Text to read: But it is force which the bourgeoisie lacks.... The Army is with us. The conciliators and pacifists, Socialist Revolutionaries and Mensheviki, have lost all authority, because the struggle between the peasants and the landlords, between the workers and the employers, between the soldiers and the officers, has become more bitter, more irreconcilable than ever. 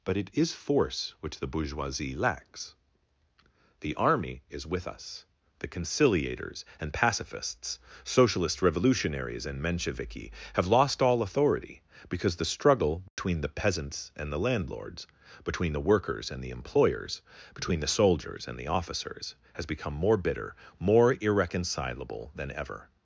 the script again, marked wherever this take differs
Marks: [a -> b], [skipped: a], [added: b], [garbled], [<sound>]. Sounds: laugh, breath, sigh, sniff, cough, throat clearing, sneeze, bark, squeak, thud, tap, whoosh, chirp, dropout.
But it is force which the bourgeoisie lacks.... The Army is with us. The conciliators and pacifists, Socialist Revolutionaries and Mensheviki, have lost all authority, because the struggle between [dropout] the peasants and the landlords, between the workers and the employers, between the soldiers and the officers, has become more bitter, more irreconcilable than ever.